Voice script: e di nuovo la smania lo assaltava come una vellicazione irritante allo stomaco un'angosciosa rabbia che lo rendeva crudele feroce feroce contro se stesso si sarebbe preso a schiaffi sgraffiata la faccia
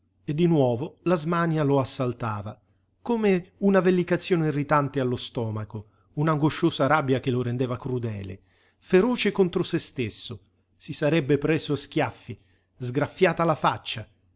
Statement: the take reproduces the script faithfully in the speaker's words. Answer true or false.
false